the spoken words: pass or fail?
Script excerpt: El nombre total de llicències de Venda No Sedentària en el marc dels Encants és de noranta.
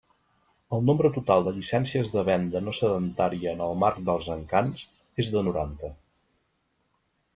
pass